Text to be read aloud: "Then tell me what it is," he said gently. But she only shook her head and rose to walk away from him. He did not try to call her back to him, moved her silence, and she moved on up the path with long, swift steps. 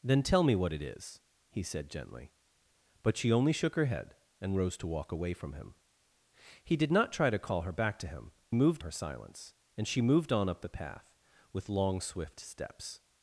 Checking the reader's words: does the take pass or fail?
pass